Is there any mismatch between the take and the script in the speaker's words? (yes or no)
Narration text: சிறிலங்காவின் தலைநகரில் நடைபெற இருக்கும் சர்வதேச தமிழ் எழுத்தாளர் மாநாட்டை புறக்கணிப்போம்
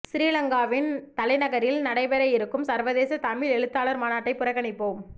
no